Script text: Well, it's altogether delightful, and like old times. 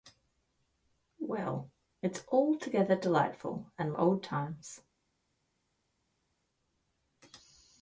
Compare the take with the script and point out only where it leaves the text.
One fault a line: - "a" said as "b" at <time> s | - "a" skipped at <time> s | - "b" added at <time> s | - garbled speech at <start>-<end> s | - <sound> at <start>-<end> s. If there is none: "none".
- "like" skipped at 3.9 s